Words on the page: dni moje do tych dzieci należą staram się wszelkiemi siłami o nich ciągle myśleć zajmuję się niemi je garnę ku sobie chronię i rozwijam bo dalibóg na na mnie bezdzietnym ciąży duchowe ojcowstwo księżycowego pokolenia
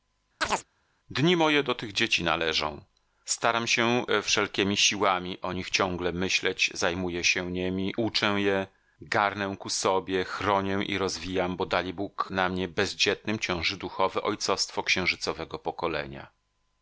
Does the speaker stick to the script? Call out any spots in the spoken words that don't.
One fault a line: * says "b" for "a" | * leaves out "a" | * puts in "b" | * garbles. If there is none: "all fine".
* puts in "uczę"
* leaves out "na"